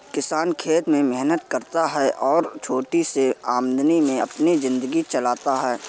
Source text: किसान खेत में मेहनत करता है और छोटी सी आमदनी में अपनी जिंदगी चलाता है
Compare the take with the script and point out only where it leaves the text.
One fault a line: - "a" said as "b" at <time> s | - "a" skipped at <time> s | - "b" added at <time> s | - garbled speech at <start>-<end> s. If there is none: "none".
none